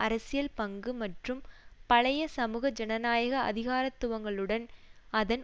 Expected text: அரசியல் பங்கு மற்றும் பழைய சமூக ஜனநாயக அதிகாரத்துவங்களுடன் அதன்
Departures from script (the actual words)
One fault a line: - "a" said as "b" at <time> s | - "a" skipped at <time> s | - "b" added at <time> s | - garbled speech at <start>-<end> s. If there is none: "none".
none